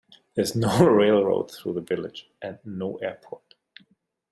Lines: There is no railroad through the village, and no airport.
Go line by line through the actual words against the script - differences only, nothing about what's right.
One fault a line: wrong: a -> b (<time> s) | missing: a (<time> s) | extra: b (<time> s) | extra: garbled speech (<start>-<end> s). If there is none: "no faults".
no faults